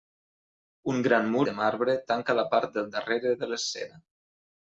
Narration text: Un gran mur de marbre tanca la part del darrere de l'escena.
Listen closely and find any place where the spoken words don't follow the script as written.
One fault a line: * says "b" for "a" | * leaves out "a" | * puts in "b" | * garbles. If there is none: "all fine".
all fine